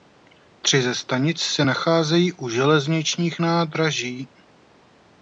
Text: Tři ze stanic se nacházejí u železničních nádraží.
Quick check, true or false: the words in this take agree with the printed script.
true